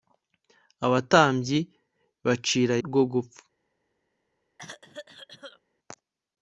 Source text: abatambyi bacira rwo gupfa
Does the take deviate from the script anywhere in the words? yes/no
no